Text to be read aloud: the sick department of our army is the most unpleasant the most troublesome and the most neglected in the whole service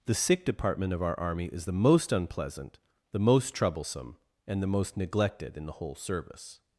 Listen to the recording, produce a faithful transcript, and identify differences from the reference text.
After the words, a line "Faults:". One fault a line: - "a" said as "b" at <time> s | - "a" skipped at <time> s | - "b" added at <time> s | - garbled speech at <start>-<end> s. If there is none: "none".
the sick department of our army is the most unpleasant the most troublesome and the most neglected in the whole service
Faults:
none